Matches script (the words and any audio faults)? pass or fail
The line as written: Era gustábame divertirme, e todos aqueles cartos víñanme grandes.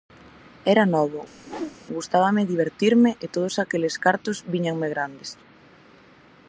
fail